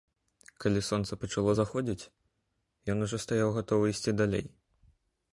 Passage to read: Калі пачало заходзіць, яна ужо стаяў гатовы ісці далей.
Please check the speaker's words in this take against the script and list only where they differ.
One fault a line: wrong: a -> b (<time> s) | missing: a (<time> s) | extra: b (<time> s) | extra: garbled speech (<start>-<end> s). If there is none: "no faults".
extra: сонца (0.8 s)
wrong: яна -> ён (2.9 s)